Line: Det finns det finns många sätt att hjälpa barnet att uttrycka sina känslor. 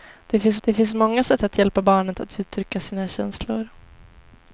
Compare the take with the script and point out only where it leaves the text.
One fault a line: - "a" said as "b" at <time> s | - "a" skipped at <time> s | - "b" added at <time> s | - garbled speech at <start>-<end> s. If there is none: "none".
none